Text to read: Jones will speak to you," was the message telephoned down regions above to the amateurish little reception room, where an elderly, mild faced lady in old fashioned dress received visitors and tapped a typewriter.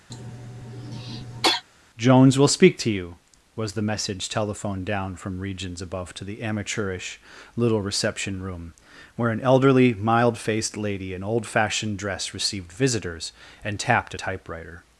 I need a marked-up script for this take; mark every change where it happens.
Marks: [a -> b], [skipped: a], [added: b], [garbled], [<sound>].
[cough] Jones will speak to you," was the message telephoned down [added: from] regions above to the amateurish little reception room, where an elderly, mild faced lady in old fashioned dress received visitors and tapped a typewriter.